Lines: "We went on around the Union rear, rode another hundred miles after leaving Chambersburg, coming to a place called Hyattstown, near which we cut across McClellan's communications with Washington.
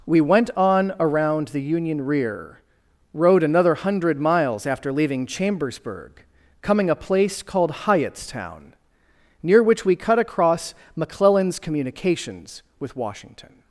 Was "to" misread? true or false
true